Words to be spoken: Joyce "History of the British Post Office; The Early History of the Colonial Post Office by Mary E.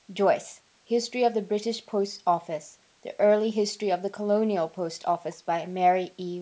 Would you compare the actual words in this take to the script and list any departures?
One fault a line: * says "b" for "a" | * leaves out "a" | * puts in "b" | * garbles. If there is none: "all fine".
all fine